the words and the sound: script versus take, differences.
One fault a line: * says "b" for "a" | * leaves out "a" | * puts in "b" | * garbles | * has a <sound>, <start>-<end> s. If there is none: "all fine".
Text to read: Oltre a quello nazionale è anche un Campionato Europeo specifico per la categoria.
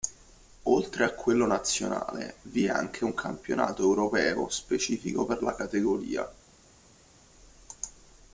* puts in "vi"